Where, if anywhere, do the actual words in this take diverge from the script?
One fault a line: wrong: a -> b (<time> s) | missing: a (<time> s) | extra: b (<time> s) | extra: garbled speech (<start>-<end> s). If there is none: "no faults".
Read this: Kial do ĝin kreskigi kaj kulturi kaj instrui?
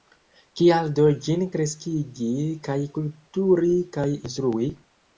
no faults